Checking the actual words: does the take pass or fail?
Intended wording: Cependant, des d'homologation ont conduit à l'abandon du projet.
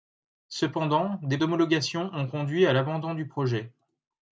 pass